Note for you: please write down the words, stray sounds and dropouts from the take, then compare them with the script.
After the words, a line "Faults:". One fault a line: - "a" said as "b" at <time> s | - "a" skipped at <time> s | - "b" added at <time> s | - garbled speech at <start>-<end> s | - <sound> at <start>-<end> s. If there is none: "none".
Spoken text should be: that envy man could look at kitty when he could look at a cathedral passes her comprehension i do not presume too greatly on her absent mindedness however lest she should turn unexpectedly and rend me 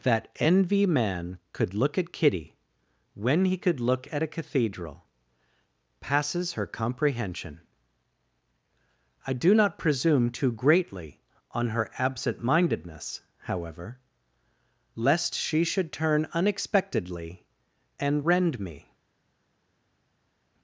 that envy man could look at kitty when he could look at a cathedral passes her comprehension i do not presume too greatly on her absent mindedness however lest she should turn unexpectedly and rend me
Faults:
none